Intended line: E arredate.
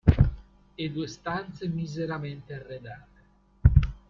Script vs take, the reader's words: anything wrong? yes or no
yes